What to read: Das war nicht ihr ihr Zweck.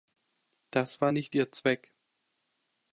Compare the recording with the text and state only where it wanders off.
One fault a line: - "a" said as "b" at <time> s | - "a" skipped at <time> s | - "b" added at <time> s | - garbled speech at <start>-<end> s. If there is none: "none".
- "ihr" skipped at 1.5 s